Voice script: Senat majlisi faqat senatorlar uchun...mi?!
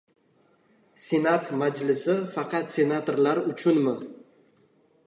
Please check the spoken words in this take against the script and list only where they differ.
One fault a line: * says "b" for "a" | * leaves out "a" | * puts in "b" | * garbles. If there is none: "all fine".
all fine